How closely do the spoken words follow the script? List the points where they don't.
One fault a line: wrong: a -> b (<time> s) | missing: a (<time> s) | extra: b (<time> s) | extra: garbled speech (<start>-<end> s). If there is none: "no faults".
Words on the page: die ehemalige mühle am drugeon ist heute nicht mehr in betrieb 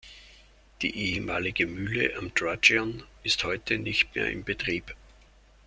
no faults